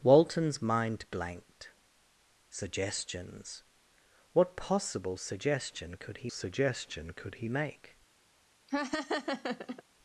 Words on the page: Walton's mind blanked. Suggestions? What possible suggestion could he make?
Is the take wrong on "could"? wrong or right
right